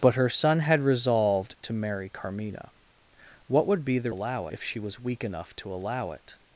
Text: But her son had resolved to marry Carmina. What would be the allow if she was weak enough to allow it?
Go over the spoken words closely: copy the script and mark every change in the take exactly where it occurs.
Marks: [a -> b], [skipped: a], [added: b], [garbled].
But her son had resolved to marry Carmina. What would be the allow if she was weak enough to allow it?